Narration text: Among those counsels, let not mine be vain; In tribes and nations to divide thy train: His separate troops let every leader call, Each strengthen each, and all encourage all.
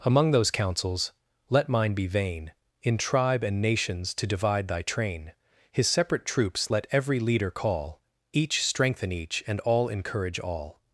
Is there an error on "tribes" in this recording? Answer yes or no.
yes